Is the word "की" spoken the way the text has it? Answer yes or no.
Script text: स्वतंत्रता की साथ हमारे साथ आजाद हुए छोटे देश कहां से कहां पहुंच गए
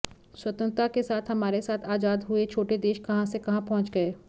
no